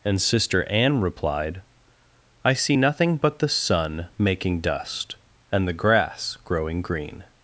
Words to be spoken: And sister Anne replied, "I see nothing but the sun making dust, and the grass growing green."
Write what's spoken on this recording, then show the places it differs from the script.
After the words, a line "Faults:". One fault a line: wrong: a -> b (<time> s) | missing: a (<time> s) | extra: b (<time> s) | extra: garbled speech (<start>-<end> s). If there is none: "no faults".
And sister Anne replied, "I see nothing but the sun making dust, and the grass growing green."
Faults:
no faults